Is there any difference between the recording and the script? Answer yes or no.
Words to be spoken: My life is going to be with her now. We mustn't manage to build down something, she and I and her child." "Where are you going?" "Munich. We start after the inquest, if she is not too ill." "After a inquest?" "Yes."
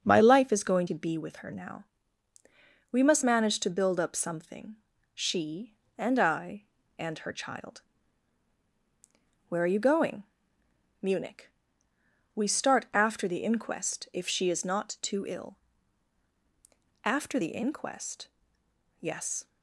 yes